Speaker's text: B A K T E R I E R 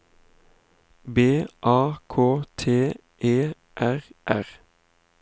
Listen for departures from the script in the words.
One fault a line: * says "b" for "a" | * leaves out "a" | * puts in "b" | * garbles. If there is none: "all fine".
* leaves out "I E"